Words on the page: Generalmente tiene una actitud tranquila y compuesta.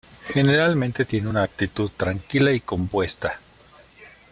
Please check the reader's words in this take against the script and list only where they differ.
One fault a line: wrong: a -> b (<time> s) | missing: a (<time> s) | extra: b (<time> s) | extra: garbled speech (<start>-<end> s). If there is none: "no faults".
no faults